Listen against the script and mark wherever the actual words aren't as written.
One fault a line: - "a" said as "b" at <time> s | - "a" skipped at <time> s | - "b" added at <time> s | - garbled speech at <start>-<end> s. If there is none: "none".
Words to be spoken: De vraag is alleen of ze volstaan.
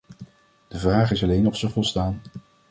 none